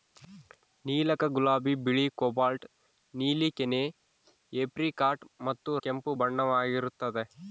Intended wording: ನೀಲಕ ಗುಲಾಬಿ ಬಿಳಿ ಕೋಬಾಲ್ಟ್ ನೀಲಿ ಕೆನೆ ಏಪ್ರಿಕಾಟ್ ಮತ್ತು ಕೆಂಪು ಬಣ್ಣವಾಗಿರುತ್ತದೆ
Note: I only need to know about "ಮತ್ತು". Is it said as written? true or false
true